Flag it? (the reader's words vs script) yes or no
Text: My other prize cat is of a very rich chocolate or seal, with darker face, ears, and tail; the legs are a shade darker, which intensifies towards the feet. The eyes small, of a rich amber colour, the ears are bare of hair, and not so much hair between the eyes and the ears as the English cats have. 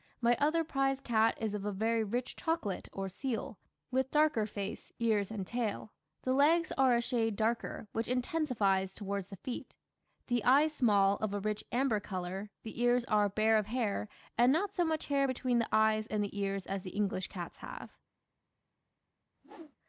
no